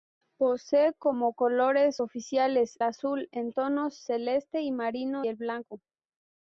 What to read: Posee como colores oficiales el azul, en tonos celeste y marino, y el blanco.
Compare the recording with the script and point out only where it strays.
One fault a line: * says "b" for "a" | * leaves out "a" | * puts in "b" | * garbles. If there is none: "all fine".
* leaves out "el"
* leaves out "y"